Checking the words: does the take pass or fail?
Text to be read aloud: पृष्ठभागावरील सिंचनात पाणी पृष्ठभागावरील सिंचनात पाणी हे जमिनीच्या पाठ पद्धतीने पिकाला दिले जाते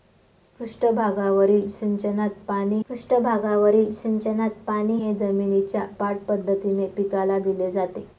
pass